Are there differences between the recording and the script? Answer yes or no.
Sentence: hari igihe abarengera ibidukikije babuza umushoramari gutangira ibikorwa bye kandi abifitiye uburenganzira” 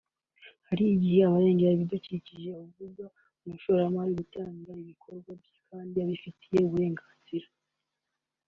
no